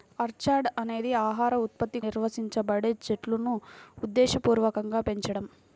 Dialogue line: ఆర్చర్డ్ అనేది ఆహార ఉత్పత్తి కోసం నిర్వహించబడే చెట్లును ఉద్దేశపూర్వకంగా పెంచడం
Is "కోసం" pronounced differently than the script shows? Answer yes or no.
yes